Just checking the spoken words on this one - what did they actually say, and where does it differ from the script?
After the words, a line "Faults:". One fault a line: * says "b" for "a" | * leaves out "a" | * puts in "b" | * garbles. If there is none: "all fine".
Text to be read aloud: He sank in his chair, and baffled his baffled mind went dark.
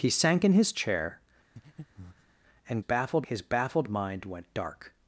He sank in his chair, and baffled his baffled mind went dark.
Faults:
all fine